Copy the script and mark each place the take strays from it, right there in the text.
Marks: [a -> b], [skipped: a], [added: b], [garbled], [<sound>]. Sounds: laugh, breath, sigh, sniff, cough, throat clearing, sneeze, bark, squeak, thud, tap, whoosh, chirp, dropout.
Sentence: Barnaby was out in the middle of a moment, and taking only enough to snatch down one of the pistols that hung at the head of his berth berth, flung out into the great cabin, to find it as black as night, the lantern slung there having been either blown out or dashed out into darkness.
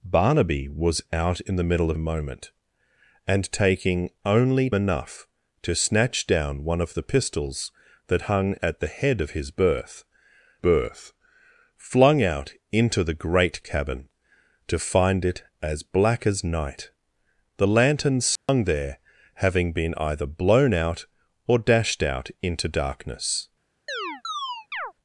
Barnaby was out in the middle of a moment, and taking only enough to snatch down one of the pistols that hung at the head of his berth berth, flung out into the great cabin, to find it as black as night, the lantern slung [dropout] there having been either blown out or dashed out into darkness. [chirp]